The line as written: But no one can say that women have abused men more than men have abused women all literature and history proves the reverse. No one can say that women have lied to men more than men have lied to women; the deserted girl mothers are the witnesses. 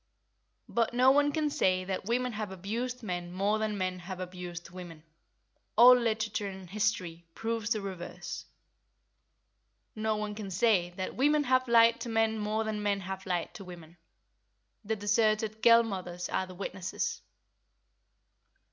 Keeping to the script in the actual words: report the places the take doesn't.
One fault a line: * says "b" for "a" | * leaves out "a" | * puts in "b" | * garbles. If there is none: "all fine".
all fine